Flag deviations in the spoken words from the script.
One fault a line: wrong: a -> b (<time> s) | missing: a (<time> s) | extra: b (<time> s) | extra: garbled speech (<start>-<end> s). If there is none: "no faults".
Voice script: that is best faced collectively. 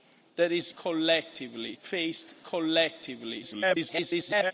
wrong: best -> collectively (0.8 s)
extra: garbled speech (3.4-4.5 s)